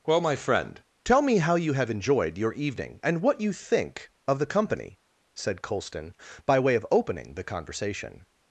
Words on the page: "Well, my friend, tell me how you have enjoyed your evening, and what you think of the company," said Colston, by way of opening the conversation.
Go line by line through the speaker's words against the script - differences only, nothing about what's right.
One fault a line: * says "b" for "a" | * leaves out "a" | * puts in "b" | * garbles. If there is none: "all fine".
all fine